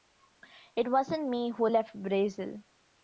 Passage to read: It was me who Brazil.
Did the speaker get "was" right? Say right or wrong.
wrong